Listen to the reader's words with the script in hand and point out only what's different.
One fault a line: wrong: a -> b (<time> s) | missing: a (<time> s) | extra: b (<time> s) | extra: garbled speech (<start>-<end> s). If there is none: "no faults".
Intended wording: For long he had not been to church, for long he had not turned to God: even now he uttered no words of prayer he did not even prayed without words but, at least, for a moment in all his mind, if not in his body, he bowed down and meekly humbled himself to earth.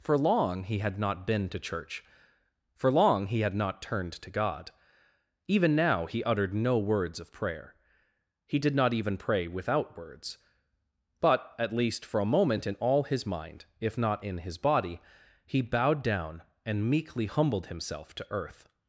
wrong: prayed -> pray (9.2 s)